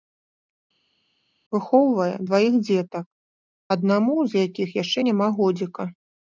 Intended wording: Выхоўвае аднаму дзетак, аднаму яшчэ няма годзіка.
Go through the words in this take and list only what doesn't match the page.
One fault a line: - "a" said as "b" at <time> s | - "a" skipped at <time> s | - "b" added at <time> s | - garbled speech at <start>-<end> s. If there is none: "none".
- "аднаму" said as "дваіх" at 2.3 s
- "з якіх" added at 4.4 s